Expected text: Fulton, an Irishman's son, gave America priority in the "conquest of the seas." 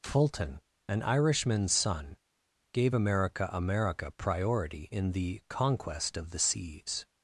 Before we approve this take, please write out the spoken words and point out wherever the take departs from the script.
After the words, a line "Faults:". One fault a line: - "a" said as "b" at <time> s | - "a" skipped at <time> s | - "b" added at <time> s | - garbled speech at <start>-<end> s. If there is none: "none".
Fulton, an Irishman's son, gave America America priority in the "conquest of the seas."
Faults:
- "America" added at 3.5 s